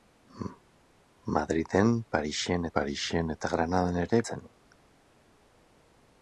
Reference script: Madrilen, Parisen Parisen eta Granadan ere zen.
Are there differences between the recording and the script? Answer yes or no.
no